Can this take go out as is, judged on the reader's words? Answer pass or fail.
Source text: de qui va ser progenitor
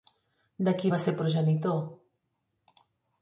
pass